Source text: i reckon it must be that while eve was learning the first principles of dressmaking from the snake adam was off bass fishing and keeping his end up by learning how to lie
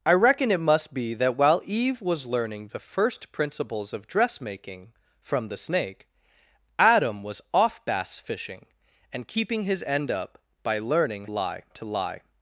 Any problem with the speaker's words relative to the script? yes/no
yes